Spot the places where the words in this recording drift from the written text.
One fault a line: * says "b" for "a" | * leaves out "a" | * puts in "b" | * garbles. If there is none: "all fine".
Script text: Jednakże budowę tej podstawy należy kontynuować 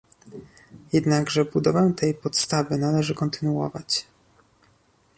all fine